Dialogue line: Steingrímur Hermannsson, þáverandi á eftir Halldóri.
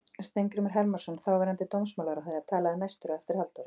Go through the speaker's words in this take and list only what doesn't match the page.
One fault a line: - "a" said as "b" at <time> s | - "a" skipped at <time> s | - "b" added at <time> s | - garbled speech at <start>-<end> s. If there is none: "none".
- "dómsmálaráðherra talaði næstur" added at 1.8 s